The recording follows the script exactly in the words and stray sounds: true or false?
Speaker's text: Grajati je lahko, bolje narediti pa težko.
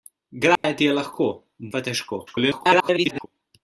false